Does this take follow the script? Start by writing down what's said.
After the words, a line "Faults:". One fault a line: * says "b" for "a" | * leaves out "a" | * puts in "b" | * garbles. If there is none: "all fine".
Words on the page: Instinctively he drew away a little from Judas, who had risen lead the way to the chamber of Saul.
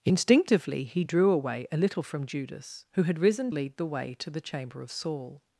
Instinctively he drew away a little from Judas, who had risen lead the way to the chamber of Saul.
Faults:
all fine